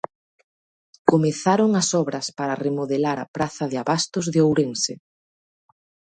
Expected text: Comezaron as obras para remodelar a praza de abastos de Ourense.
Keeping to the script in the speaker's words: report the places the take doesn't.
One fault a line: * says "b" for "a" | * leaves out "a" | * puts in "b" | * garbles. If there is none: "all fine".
all fine